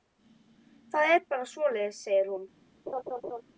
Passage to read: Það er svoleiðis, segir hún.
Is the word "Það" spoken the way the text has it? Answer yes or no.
yes